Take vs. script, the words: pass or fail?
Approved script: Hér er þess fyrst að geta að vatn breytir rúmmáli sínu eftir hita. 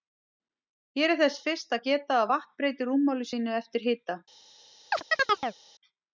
pass